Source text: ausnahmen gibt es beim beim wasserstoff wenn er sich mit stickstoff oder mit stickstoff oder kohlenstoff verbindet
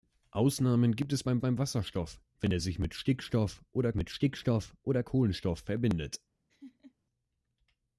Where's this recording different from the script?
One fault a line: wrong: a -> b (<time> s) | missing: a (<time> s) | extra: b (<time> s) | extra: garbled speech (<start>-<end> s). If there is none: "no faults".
no faults